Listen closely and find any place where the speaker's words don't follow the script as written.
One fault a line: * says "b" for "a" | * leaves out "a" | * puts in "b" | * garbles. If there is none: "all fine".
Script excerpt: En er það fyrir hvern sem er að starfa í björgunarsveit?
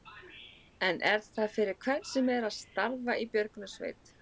all fine